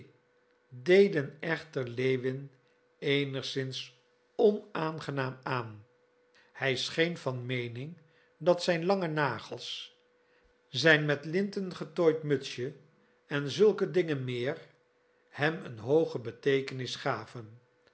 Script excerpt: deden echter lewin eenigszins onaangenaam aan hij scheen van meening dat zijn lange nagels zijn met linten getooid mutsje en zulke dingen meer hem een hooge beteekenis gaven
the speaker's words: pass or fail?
pass